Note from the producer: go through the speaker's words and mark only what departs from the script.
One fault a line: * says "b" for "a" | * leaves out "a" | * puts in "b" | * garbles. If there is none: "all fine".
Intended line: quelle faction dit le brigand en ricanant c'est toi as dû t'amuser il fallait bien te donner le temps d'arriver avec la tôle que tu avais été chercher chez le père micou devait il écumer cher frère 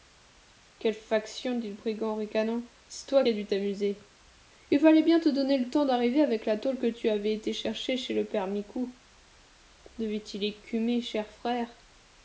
all fine